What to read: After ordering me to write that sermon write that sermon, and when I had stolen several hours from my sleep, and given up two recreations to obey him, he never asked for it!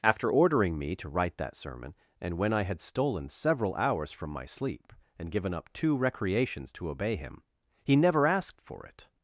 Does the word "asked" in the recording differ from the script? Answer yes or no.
no